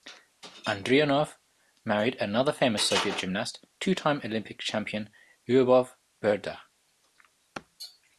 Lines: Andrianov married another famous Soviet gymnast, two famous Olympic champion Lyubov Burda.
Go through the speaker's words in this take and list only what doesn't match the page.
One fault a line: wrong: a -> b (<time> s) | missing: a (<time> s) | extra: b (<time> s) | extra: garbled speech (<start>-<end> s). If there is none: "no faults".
wrong: famous -> time (3.9 s)